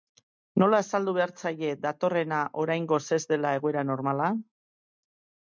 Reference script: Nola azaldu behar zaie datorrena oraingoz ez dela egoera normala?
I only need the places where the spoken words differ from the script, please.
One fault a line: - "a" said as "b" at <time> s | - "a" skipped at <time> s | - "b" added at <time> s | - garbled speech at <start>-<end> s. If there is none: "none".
none